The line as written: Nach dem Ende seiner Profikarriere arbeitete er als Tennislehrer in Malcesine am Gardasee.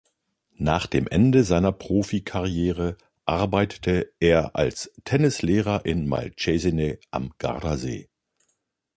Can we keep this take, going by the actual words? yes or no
yes